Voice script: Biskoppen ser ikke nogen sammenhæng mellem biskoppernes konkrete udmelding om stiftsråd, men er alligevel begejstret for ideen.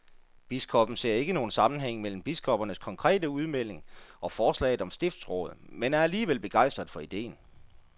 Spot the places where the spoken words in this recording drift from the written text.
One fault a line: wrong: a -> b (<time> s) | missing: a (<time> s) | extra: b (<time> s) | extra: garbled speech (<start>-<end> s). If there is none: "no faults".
extra: og forslaget (4.2 s)